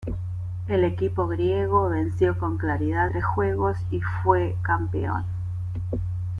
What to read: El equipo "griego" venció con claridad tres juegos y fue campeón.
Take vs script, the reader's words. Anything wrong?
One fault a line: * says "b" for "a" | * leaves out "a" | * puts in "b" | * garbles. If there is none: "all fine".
all fine